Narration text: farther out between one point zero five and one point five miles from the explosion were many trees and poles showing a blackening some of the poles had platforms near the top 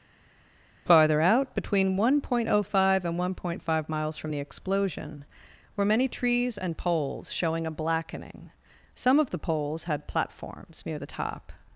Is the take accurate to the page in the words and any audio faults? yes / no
yes